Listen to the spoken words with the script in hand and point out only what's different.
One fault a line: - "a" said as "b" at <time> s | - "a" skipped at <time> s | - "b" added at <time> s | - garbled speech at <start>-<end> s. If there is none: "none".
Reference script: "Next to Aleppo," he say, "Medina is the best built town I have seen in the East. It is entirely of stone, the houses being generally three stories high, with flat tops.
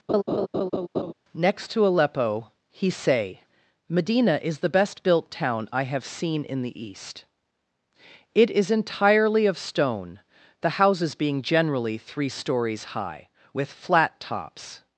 none